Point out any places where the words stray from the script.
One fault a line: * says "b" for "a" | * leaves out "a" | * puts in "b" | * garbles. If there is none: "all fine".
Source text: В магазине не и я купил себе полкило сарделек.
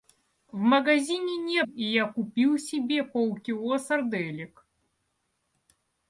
all fine